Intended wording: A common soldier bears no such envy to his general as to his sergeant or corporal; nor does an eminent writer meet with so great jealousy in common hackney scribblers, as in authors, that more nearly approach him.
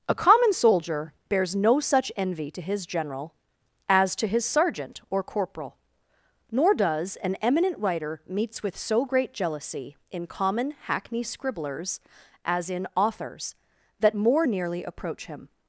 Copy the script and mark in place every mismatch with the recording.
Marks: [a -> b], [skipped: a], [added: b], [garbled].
A common soldier bears no such envy to his general as to his sergeant or corporal; nor does an eminent writer [meet -> meets] with so great jealousy in common hackney scribblers, as in authors, that more nearly approach him.